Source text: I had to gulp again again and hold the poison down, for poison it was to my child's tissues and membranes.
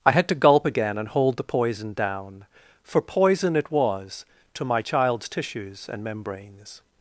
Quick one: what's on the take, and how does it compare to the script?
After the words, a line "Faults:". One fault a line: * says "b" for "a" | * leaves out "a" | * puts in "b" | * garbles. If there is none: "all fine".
I had to gulp again and hold the poison down, for poison it was to my child's tissues and membranes.
Faults:
* leaves out "again"